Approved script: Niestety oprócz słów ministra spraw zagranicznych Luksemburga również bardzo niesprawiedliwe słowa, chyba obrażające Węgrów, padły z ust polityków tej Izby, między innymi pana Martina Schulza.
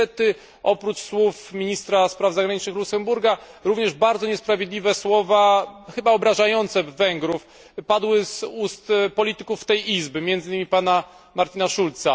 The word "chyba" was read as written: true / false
true